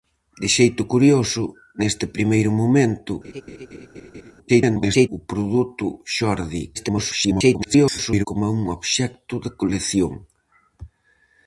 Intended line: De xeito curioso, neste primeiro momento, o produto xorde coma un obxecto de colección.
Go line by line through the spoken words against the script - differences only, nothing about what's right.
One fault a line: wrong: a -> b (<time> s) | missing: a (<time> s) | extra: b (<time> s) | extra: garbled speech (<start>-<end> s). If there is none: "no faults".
extra: garbled speech (4.5-5.1 s)
extra: garbled speech (6.7-8.3 s)